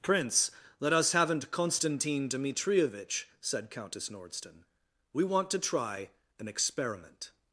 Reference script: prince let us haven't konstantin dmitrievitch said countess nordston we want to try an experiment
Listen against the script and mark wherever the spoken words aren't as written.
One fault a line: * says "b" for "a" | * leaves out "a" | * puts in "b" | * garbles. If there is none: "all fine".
all fine